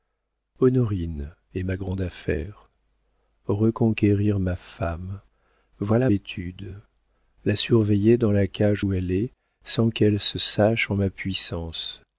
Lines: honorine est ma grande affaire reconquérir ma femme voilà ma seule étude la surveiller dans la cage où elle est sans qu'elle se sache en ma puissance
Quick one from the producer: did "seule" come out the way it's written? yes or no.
no